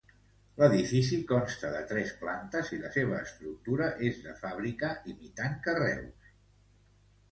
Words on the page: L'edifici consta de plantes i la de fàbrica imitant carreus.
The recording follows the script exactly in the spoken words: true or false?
false